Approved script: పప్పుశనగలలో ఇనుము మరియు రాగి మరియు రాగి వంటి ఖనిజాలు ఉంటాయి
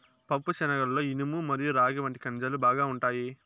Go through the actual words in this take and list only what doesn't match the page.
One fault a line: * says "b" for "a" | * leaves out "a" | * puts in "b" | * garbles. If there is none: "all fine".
* leaves out "మరియు రాగి"
* puts in "బాగా"